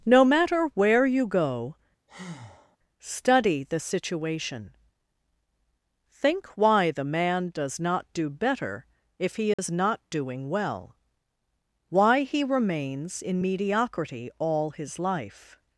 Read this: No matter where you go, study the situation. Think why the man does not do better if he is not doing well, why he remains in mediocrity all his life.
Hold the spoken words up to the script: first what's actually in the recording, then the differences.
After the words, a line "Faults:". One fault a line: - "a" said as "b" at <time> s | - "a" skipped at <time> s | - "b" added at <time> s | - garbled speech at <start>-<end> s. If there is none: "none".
No matter where you go, study the situation. Think why the man does not do better if he is not doing well, why he remains in mediocrity all his life.
Faults:
none